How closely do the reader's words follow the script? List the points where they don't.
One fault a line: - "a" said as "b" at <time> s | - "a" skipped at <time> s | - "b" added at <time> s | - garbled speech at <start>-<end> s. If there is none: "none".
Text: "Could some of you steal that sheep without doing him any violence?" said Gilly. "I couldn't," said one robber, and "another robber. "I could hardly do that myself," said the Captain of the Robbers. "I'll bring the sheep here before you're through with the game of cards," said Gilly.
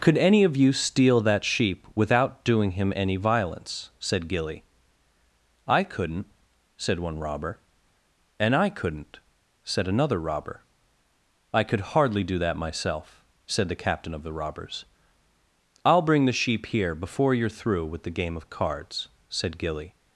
- "some" said as "any" at 0.2 s
- "I couldn't said" added at 8.6 s